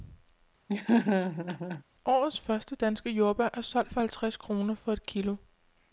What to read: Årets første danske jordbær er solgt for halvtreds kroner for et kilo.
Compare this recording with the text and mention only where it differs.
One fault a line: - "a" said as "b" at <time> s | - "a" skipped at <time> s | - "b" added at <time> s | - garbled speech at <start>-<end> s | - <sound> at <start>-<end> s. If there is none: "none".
- laugh at 0.7-1.8 s